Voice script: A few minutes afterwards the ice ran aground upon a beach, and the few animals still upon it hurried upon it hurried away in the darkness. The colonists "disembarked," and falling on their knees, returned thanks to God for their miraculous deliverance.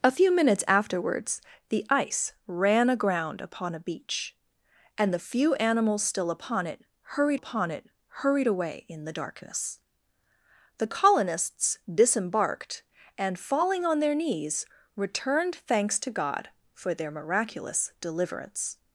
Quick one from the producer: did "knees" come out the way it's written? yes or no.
yes